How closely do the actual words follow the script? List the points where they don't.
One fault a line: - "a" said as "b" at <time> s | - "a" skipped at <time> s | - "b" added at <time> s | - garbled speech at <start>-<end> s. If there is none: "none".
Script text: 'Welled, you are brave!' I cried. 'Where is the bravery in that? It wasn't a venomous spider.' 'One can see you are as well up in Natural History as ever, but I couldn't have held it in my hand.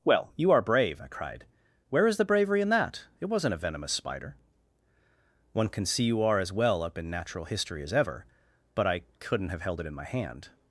- "Welled" said as "Well" at 0.0 s